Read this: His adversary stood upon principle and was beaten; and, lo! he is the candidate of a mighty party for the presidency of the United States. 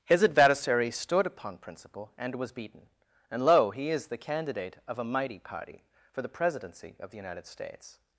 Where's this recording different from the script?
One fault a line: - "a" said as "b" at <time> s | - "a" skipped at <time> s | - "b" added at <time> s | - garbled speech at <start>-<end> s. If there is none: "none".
none